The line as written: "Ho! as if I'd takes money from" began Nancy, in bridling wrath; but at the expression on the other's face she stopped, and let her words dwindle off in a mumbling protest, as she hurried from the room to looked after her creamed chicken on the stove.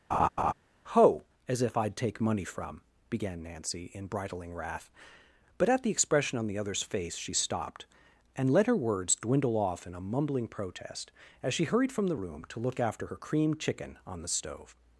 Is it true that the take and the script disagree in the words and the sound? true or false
true